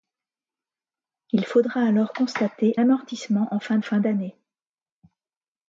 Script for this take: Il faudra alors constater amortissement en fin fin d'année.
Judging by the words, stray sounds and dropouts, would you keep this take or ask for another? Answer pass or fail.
pass